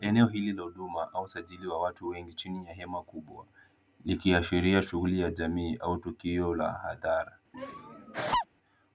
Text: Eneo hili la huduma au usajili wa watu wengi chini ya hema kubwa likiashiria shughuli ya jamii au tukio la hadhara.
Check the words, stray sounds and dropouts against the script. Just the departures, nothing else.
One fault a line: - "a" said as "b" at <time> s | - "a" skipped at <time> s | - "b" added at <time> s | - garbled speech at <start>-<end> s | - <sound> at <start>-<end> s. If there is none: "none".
- laugh at 7.5-8.5 s